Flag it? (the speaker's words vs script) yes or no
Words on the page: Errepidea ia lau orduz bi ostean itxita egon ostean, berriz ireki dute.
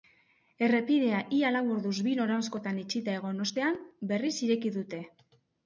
yes